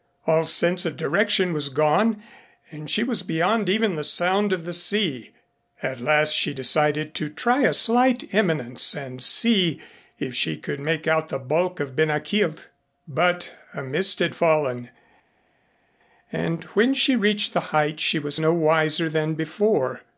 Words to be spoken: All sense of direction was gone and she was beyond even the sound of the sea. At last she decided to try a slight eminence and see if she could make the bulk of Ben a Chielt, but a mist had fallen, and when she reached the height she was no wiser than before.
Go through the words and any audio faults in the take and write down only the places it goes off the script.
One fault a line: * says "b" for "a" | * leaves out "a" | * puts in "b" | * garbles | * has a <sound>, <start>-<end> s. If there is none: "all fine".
* puts in "out"